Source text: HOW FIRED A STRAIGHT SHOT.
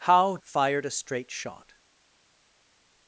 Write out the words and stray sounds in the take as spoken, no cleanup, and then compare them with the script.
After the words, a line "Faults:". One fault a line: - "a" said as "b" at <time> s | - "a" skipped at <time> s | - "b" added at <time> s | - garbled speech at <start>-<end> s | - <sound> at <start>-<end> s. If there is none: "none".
HOW FIRED A STRAIGHT SHOT.
Faults:
none